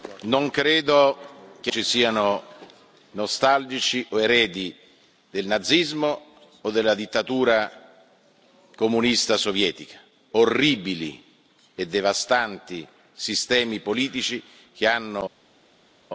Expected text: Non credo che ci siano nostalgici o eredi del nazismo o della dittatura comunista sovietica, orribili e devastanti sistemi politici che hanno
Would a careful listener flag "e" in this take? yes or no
no